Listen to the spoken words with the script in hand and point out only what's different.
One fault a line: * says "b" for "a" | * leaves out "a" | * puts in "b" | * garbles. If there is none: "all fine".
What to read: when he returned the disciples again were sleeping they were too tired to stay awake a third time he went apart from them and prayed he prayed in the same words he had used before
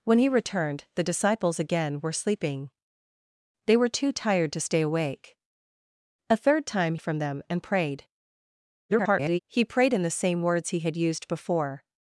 * leaves out "he went apart"
* garbles